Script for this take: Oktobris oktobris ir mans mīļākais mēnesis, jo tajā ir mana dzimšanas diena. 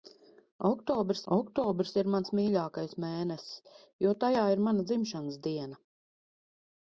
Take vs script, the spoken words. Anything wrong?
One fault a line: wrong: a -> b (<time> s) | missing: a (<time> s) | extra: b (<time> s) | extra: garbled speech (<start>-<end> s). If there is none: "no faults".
no faults